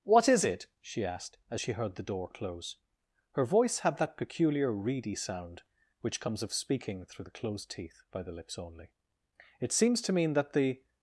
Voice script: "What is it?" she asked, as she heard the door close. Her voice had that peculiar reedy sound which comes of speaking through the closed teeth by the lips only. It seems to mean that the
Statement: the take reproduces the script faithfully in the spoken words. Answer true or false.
true